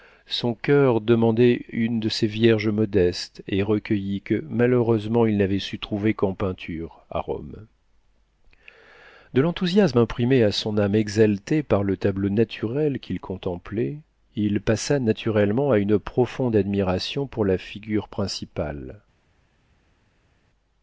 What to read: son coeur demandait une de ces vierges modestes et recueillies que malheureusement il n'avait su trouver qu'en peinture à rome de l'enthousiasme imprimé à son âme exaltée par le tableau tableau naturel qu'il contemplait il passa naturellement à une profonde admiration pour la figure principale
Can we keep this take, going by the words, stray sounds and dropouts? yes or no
no